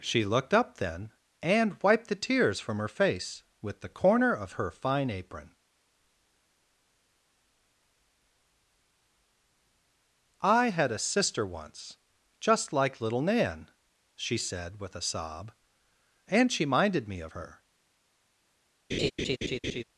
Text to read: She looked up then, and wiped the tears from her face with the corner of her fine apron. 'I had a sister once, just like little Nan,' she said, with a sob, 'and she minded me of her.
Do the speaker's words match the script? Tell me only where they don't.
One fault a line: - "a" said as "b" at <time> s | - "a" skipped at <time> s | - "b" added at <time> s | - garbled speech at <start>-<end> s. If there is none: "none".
none